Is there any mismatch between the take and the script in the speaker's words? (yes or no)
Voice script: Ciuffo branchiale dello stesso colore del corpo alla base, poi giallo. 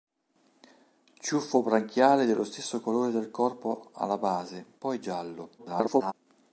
yes